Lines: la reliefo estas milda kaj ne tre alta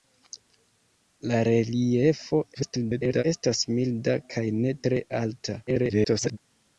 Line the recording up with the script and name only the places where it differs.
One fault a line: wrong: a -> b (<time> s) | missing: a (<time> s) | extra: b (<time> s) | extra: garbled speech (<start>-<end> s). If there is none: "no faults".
extra: garbled speech (2.5-3.2 s)
extra: garbled speech (5.7-6.4 s)